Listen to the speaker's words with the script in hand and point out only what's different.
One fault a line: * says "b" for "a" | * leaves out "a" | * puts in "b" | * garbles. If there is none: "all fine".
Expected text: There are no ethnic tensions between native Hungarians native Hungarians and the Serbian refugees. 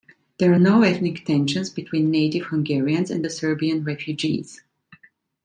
* leaves out "native Hungarians"